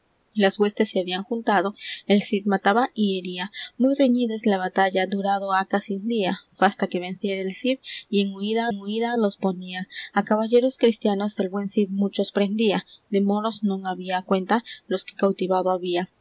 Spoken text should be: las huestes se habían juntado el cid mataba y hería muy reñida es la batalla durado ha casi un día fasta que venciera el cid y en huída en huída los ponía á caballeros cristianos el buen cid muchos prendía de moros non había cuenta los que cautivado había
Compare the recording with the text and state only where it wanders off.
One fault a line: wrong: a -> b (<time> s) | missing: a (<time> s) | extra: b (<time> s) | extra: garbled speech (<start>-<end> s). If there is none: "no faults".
no faults